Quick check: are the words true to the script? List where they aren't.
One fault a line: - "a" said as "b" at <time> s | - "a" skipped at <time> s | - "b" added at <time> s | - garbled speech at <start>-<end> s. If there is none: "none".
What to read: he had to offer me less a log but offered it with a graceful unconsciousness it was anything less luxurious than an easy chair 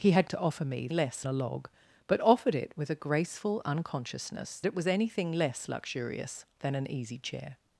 none